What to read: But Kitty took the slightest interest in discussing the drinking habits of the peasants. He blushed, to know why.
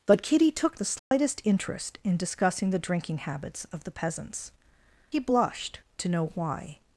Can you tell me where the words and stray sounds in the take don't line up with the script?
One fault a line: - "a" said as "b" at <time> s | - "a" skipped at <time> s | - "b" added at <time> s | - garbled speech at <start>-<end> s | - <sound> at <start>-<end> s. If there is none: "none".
- dropout at 1.0-1.1 s